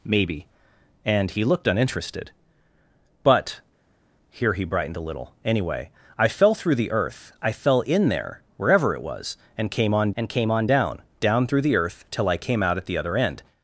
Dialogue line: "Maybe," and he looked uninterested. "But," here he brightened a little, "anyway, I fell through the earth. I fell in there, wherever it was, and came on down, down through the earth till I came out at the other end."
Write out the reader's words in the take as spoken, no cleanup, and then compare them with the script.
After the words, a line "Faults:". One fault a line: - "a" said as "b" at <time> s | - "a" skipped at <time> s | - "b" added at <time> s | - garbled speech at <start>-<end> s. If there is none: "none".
"Maybe," and he looked uninterested. "But," here he brightened a little, "anyway, I fell through the earth. I fell in there, wherever it was, and came on and came on down, down through the earth till I came out at the other end."
Faults:
- "and came on" added at 10.2 s